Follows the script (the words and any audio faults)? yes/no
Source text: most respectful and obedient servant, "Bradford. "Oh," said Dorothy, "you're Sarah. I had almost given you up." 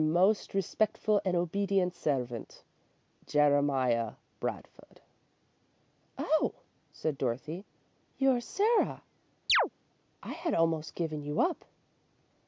no